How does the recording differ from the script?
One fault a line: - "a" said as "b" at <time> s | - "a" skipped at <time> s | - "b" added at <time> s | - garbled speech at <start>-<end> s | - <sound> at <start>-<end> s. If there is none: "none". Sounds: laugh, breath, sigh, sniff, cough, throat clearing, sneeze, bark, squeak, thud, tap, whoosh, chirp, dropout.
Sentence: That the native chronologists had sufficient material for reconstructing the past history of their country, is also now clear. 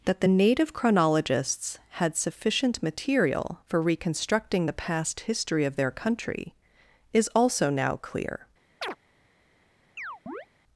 - chirp at 8.8-9.0 s
- chirp at 10.0-10.5 s